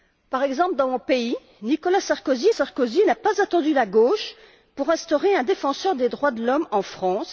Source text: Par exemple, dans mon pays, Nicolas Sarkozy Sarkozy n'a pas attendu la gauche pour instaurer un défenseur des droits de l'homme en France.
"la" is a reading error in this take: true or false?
false